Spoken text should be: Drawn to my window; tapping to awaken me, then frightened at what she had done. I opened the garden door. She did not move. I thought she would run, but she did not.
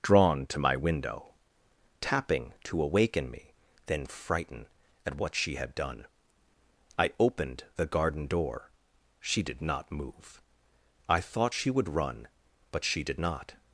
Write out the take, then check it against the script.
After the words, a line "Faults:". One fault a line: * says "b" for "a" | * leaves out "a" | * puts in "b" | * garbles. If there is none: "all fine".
Drawn to my window; tapping to awaken me, then frighten at what she had done. I opened the garden door. She did not move. I thought she would run, but she did not.
Faults:
* says "frighten" for "frightened"